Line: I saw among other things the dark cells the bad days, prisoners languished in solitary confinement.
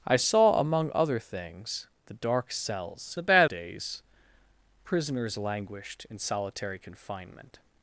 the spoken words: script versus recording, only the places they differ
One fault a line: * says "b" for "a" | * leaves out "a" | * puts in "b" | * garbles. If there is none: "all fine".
all fine